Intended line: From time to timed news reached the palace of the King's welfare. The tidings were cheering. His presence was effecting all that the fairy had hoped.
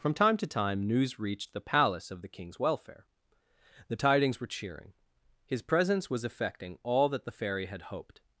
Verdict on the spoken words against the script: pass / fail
fail